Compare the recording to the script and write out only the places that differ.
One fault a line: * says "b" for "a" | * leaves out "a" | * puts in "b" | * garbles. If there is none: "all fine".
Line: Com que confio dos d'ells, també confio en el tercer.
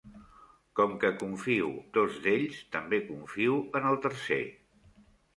all fine